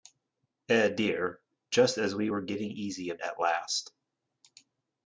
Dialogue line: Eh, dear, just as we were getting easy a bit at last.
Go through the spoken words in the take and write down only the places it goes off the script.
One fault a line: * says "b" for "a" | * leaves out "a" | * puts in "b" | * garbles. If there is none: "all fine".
* leaves out "bit"